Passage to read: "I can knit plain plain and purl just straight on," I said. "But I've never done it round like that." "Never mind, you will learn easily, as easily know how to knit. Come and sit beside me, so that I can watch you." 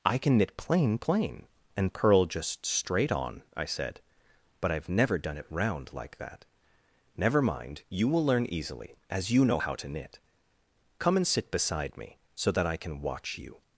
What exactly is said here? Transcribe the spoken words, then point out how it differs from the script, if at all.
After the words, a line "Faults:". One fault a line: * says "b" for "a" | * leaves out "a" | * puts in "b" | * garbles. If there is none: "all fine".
"I can knit plain plain and purl just straight on," I said. "But I've never done it round like that." "Never mind, you will learn easily, as you know how to knit. Come and sit beside me, so that I can watch you."
Faults:
* says "you" for "easily"